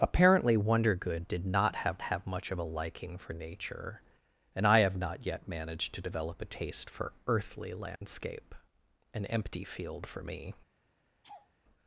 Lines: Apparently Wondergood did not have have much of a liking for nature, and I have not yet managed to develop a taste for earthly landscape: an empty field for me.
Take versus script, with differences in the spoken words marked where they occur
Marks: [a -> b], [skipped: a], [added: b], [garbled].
Apparently Wondergood did not have have much of a liking for nature, and I have not yet managed to develop a taste for earthly landscape: an empty field for me.